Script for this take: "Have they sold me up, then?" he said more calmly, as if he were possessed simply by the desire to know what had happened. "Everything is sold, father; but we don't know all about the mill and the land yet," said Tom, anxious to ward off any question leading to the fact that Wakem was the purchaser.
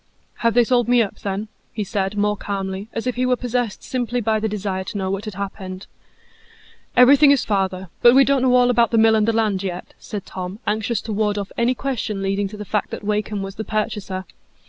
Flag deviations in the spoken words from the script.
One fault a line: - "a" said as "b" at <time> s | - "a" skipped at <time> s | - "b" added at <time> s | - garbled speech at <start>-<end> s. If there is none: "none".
- "sold" skipped at 7.4 s